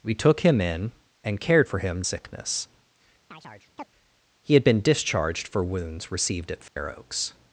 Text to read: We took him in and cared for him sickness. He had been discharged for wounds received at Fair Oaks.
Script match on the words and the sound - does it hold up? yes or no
no